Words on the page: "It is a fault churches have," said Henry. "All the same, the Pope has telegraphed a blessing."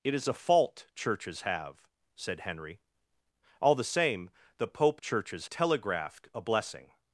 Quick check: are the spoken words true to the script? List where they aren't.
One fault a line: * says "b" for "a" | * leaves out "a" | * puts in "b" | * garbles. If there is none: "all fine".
* says "churches" for "has"